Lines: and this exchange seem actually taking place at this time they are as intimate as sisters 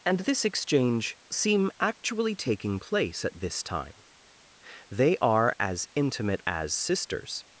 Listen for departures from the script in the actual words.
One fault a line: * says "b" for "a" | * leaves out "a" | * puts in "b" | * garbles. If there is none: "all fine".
all fine